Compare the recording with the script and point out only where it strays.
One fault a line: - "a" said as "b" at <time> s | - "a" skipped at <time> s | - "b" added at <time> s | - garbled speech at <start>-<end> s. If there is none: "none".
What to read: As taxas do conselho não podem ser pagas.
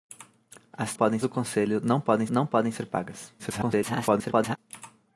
- "taxas" said as "podem" at 0.9 s
- "não podem" added at 2.3 s
- garbled speech at 3.4-4.6 s